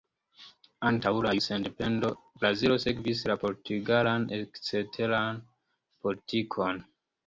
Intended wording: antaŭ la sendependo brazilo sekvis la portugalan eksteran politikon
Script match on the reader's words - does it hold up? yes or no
yes